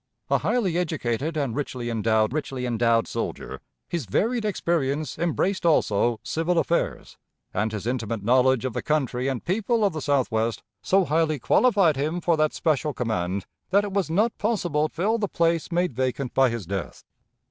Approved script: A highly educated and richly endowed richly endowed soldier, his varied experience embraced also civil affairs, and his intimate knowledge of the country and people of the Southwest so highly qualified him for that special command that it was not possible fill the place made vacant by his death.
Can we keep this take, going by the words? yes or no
yes